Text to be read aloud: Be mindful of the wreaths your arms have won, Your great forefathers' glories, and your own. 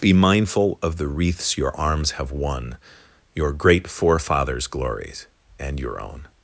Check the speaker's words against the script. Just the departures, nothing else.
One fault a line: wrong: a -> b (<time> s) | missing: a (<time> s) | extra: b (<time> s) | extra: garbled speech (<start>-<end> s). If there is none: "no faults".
no faults